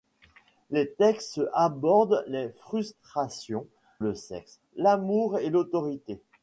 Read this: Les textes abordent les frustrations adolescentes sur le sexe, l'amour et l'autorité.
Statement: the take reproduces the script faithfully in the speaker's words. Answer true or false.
false